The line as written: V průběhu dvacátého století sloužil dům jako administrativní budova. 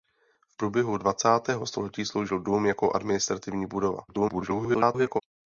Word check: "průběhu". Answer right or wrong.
right